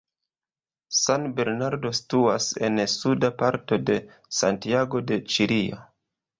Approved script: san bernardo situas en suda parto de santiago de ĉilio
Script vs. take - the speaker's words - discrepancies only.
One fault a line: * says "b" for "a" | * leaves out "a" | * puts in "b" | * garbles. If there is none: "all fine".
all fine